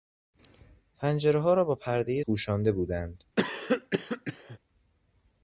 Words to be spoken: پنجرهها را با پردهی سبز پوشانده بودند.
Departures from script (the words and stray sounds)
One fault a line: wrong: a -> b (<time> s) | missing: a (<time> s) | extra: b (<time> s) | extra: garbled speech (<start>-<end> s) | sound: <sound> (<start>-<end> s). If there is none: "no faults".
missing: سبز (2.2 s)
sound: cough (3.4-4.6 s)